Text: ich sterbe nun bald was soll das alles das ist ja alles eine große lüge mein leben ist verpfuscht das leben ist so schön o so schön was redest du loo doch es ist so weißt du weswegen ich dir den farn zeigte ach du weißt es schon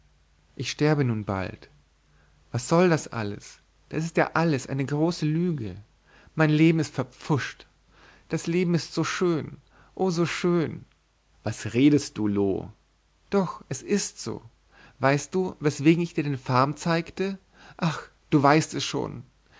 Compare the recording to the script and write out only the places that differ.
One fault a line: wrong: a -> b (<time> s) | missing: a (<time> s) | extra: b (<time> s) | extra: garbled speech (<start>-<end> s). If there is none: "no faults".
no faults